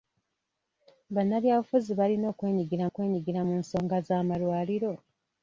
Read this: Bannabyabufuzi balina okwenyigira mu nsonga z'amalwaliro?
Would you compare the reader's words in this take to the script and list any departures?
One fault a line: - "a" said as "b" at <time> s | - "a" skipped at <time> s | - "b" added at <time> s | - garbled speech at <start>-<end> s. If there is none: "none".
- "okwenyigira" added at 2.9 s